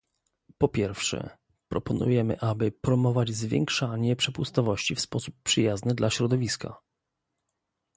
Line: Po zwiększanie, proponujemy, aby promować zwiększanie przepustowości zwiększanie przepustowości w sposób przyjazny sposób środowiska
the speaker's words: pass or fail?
fail